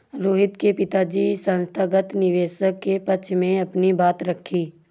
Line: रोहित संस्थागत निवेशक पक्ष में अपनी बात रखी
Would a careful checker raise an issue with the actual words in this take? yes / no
yes